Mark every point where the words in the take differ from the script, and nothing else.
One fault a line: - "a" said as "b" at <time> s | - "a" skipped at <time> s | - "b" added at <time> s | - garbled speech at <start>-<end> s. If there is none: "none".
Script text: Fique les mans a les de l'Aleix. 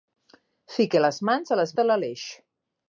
none